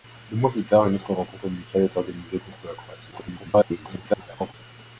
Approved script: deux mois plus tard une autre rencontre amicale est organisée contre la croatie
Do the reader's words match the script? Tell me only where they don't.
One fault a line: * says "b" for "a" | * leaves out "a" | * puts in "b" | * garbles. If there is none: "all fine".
* garbles